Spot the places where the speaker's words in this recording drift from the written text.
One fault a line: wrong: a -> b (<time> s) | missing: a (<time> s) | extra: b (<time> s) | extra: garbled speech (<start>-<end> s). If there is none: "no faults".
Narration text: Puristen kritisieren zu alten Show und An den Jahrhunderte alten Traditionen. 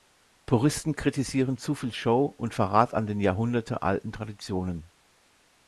wrong: alten -> viel (1.8 s)
extra: Verrat (2.5 s)